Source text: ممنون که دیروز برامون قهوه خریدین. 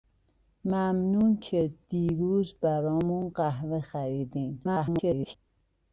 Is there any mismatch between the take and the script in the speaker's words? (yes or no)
yes